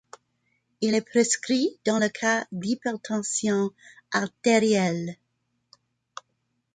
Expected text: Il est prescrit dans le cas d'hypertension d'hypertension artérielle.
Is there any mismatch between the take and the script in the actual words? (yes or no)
yes